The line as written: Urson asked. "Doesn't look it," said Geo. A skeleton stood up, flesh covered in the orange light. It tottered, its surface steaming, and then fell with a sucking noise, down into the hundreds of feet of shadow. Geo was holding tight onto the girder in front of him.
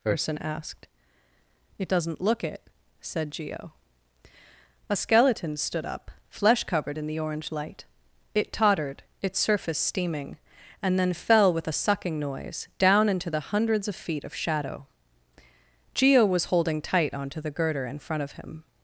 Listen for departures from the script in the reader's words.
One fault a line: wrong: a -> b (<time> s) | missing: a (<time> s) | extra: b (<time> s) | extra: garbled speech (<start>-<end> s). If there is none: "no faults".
extra: It (1.8 s)